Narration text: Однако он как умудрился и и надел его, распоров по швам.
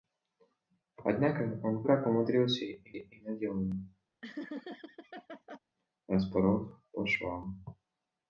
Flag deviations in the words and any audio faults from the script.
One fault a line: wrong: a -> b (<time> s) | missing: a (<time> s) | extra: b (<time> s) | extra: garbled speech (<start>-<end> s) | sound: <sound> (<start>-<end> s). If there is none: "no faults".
sound: laugh (4.2-5.6 s)